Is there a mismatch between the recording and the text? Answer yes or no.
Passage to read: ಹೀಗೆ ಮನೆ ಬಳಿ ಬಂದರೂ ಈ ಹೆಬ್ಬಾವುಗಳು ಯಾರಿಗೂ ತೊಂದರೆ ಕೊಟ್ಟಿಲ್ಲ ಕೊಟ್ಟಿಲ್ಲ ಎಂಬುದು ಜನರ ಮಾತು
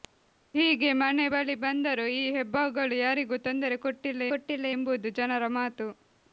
no